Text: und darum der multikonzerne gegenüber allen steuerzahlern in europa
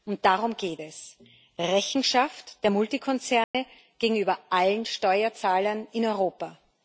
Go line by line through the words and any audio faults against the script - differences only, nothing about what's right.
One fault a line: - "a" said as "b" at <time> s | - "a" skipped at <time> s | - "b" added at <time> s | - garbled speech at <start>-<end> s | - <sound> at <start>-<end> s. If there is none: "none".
- "geht es rechenschaft" added at 0.6 s
- dropout at 3.4-3.5 s